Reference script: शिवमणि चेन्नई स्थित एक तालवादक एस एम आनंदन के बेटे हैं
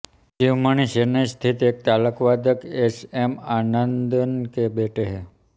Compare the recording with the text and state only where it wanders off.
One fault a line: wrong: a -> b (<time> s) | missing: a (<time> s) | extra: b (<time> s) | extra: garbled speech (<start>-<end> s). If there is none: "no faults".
no faults